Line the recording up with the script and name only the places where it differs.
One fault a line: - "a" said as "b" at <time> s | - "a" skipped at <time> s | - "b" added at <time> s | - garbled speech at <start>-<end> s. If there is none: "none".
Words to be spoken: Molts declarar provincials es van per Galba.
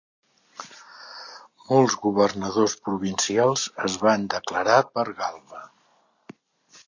- "declarar" said as "governadors" at 2.0 s
- "declarar" added at 4.3 s